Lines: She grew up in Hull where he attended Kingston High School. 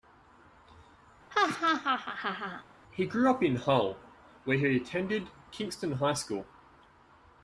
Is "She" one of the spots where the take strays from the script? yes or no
yes